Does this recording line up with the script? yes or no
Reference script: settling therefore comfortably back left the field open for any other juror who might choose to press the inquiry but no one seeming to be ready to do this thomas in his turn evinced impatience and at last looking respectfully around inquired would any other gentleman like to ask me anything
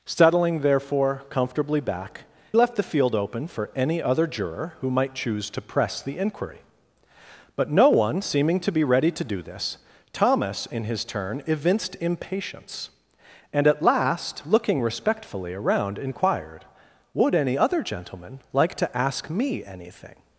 yes